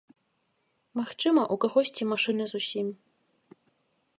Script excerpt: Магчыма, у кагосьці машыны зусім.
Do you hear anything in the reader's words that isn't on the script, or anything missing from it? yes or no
no